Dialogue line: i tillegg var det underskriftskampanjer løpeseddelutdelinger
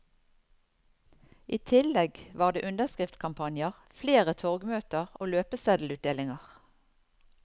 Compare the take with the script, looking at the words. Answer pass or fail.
fail